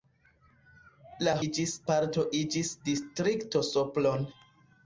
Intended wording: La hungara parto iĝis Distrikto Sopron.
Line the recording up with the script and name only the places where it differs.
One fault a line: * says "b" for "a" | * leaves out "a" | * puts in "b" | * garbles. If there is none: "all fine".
* says "iĝis" for "hungara"